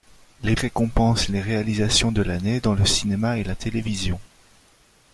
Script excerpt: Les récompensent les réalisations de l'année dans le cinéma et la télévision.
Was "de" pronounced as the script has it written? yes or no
yes